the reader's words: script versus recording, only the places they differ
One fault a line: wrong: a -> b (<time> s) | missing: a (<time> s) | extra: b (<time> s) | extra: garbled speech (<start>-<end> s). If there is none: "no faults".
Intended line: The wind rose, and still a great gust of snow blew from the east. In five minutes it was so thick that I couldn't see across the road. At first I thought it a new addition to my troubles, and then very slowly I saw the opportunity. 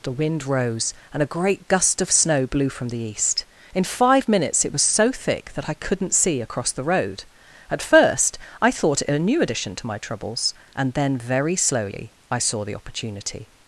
missing: still (1.2 s)